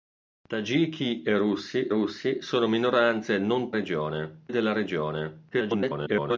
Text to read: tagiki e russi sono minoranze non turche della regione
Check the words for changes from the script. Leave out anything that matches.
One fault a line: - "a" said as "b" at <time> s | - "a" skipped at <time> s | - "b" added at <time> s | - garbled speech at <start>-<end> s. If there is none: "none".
- "russi" added at 1.9 s
- "turche" said as "regione" at 3.7 s
- garbled speech at 5.5-6.4 s